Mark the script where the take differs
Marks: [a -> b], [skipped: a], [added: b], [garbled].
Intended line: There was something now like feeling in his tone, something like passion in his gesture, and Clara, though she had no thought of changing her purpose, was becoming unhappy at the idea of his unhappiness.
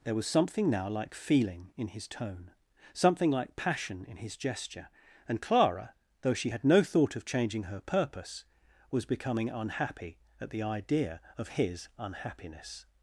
There was something now like feeling in his tone, something like passion in his gesture, and Clara, though she had no thought of changing her purpose, was becoming unhappy at the idea of his unhappiness.